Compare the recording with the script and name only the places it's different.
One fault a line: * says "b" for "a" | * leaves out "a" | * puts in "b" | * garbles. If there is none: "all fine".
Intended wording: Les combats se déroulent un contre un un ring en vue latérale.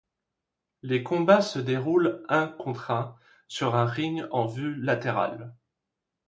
* puts in "sur"